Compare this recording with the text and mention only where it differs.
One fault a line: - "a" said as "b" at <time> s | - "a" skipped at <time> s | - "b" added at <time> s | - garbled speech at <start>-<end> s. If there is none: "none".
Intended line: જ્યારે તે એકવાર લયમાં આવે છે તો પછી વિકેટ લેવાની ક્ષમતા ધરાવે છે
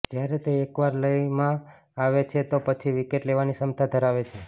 none